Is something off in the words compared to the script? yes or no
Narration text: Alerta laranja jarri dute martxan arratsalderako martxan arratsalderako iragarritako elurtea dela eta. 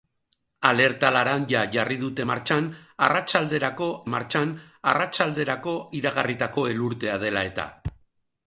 no